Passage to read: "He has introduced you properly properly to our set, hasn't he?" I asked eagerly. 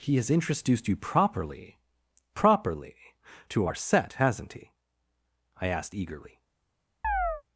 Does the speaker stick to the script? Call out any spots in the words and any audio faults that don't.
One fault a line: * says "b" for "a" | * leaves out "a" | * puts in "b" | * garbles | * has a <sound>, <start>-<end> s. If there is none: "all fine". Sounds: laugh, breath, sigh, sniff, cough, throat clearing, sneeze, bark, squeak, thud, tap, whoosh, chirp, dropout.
* has a chirp, 7.0-7.4 s